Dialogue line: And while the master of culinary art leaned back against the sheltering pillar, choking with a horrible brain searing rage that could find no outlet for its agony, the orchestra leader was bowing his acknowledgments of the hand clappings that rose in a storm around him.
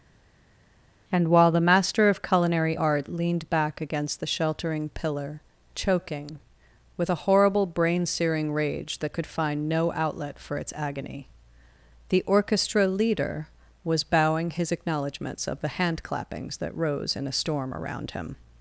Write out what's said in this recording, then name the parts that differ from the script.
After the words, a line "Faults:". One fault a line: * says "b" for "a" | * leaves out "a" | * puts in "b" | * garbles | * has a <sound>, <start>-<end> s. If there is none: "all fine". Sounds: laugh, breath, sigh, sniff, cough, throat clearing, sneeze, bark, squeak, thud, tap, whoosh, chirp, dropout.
And while the master of culinary art leaned back against the sheltering pillar, choking with a horrible brain searing rage that could find no outlet for its agony, the orchestra leader was bowing his acknowledgments of the hand clappings that rose in a storm around him.
Faults:
all fine